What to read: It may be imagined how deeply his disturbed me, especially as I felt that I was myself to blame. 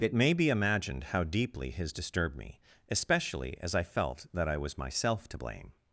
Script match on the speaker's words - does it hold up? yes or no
yes